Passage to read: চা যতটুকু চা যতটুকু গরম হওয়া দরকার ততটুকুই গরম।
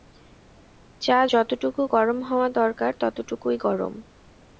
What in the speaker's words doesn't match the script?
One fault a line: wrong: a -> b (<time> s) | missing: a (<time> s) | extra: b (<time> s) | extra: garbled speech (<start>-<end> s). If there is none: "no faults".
missing: চা যতটুকু (1.8 s)